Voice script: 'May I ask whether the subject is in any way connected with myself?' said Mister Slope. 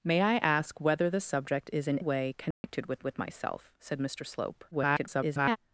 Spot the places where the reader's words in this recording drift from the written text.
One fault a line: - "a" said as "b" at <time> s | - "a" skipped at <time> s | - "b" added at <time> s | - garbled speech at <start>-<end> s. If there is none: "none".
- "any" skipped at 2.0 s
- "with" added at 3.0 s
- garbled speech at 4.7-5.6 s